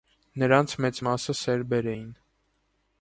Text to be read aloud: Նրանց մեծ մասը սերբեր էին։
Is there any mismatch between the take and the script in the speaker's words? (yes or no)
no